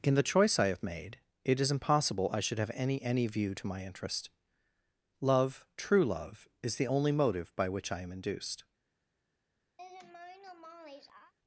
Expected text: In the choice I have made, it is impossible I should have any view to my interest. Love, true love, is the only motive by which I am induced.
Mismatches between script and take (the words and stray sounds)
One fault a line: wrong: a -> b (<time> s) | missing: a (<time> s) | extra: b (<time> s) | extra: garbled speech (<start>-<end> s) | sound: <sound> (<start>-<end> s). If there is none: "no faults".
extra: any (3.0 s)
sound: laugh (9.8-11.3 s)